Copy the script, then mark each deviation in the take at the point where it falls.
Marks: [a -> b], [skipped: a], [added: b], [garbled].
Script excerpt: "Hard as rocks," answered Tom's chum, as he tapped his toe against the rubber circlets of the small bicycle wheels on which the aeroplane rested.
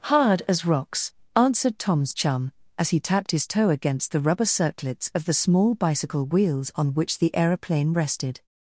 "Hard as rocks," answered Tom's chum, as he tapped his toe against the rubber circlets of the small bicycle wheels on which the aeroplane rested.